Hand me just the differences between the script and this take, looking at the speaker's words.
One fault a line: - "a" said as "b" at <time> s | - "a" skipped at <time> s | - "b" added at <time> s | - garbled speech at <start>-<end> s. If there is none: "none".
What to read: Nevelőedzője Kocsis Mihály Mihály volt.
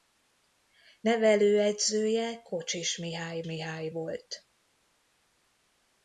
none